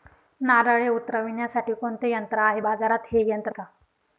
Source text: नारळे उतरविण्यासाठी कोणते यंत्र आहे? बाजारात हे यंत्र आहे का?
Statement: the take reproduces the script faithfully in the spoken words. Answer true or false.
false